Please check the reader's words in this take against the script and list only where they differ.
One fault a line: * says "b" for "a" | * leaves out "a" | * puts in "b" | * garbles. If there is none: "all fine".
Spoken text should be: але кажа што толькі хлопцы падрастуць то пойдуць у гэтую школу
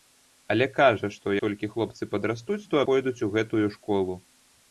all fine